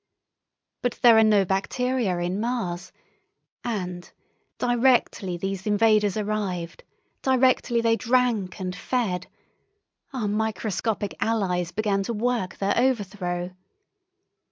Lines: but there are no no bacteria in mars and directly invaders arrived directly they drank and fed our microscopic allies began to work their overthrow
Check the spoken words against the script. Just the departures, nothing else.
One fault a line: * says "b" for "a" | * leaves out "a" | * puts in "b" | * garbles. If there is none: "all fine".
* leaves out "no"
* puts in "these"